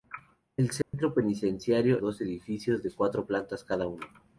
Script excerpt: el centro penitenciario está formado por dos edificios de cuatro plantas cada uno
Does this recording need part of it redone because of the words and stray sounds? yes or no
yes